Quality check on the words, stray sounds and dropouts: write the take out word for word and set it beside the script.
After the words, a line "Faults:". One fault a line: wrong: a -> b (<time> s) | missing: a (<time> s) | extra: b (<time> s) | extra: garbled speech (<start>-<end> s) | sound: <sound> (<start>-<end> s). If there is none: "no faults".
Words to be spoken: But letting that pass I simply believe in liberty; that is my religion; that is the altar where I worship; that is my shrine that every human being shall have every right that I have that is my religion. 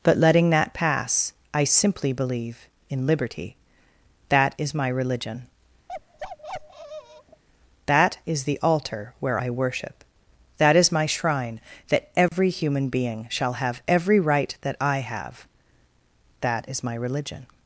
But letting that pass I simply believe in liberty; that is my religion; that is the altar where I worship; that is my shrine that every human being shall have every right that I have that is my religion.
Faults:
sound: bark (5.9-7.4 s)
sound: dropout (12.3-12.3 s)